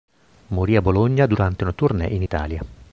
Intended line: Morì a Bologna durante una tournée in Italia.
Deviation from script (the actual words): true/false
false